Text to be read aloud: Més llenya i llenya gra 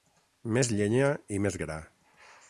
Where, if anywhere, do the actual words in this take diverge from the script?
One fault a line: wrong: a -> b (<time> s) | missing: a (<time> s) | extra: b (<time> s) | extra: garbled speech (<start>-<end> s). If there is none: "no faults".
wrong: llenya -> més (1.5 s)